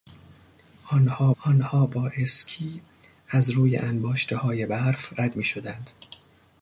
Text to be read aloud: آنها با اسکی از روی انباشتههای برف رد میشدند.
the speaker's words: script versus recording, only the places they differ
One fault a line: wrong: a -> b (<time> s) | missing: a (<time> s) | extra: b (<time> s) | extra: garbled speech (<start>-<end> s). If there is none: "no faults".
extra: آنها (1.4 s)